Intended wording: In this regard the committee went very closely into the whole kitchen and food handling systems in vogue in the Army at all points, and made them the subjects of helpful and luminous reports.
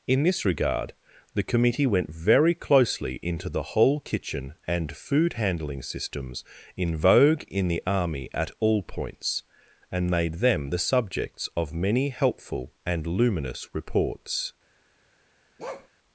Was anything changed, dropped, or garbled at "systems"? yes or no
no